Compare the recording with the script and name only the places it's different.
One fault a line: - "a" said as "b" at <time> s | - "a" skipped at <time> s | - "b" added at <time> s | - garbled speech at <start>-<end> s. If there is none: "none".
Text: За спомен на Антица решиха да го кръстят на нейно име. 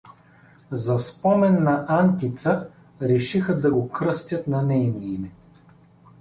none